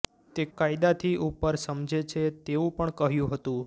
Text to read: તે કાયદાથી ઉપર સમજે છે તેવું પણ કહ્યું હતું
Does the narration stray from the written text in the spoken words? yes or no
no